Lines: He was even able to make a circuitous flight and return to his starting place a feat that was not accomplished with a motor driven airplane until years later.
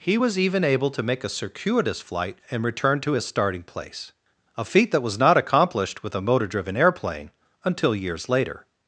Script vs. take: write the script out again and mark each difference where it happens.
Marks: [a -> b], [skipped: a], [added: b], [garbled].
He was even able to make a circuitous flight and return to his starting place a feat that was not accomplished with a motor driven airplane until years later.